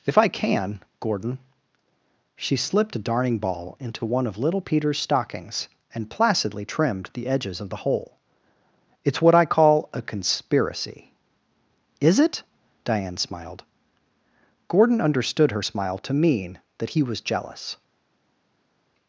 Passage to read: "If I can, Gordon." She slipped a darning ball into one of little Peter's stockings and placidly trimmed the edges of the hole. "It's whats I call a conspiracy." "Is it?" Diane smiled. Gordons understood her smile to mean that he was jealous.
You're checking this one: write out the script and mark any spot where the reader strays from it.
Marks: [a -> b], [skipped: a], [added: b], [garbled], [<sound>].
"If I can, Gordon." She slipped a darning ball into one of little Peter's stockings and placidly trimmed the edges of the hole. "It's [whats -> what] I call a conspiracy." "Is it?" Diane smiled. [Gordons -> Gordon] understood her smile to mean that he was jealous.